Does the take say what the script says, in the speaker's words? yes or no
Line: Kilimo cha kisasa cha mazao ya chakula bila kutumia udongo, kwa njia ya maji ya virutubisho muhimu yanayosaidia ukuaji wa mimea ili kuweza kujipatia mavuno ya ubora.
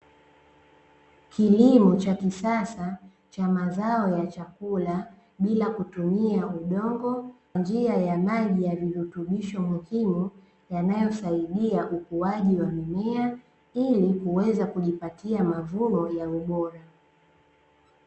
no